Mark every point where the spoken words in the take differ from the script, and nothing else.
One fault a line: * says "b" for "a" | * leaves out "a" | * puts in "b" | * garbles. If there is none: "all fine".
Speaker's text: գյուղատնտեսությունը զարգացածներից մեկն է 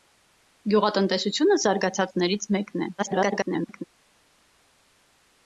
* garbles